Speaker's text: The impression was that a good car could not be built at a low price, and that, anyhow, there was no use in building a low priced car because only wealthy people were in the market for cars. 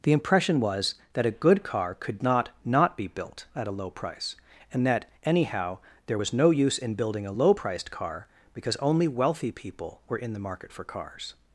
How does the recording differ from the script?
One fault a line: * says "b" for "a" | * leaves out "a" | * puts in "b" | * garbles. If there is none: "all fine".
* puts in "not"